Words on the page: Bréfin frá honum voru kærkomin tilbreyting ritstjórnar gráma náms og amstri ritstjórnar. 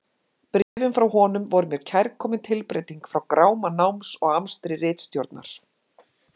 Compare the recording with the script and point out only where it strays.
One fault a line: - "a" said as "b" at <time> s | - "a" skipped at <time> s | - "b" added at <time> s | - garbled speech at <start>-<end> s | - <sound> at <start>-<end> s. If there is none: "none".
- dropout at 0.6-0.8 s
- "mér" added at 1.7 s
- "ritstjórnar" said as "frá" at 3.1 s